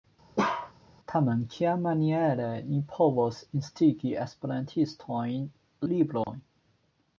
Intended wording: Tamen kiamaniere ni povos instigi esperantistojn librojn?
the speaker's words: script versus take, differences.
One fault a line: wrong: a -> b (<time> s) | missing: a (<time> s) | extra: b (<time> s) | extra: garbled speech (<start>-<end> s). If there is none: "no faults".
no faults